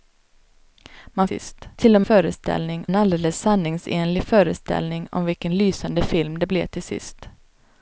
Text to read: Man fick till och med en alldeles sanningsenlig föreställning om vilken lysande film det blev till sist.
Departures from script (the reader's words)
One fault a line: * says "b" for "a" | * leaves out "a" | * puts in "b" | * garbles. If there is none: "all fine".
* says "sist" for "fick"
* says "föreställning" for "med"